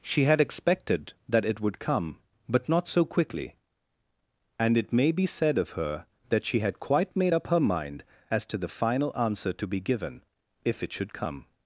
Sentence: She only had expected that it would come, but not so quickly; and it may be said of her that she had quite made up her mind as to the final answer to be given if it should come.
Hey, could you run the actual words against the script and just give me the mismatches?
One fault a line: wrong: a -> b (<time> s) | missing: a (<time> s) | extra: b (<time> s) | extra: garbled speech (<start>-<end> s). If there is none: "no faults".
missing: only (0.2 s)